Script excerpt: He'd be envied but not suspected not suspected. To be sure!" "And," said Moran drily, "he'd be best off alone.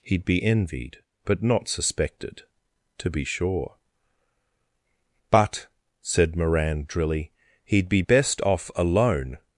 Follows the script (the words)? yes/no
no